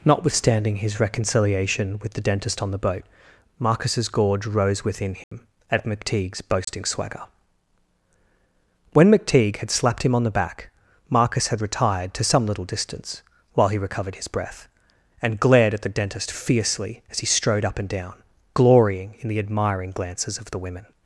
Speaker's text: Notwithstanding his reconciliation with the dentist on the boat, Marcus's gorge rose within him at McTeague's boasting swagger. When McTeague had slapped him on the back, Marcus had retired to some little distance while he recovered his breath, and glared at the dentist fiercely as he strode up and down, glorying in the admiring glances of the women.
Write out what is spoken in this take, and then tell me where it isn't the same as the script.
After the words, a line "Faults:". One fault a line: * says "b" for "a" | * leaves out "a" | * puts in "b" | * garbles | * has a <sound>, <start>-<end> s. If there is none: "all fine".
Notwithstanding his reconciliation with the dentist on the boat, Marcus's gorge rose within him at McTeague's boasting swagger. When McTeague had slapped him on the back, Marcus had retired to some little distance while he recovered his breath, and glared at the dentist fiercely as he strode up and down, glorying in the admiring glances of the women.
Faults:
* has a dropout, 5.2-5.3 s
* has a dropout, 6.6-6.7 s